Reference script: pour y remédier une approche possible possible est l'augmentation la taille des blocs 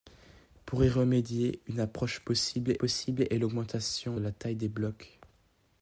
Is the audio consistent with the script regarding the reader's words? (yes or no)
yes